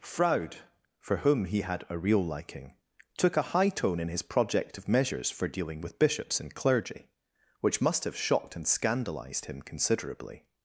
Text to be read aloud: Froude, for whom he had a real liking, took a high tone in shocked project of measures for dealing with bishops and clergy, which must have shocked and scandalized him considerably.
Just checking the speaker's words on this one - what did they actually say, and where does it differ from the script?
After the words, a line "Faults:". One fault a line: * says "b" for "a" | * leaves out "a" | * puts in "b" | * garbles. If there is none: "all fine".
Froude, for whom he had a real liking, took a high tone in his project of measures for dealing with bishops and clergy, which must have shocked and scandalized him considerably.
Faults:
* says "his" for "shocked"